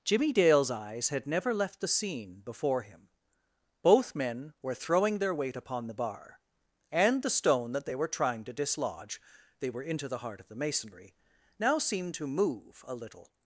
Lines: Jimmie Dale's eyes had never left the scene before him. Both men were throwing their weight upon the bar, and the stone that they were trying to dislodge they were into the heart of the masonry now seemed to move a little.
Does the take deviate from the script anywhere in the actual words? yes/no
no